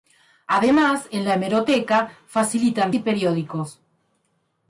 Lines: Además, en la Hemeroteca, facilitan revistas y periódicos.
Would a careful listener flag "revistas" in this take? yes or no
yes